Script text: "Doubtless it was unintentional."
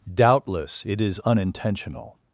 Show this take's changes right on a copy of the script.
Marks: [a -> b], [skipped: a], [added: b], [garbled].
"Doubtless it [was -> is] unintentional."